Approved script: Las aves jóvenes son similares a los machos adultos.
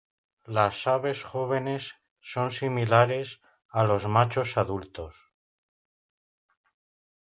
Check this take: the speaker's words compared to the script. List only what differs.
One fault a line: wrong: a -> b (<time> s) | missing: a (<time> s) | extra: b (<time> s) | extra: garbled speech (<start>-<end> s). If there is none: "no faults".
no faults